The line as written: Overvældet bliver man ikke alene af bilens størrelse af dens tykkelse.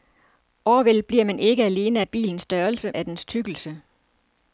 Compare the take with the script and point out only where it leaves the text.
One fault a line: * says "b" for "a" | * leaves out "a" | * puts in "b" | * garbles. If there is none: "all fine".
all fine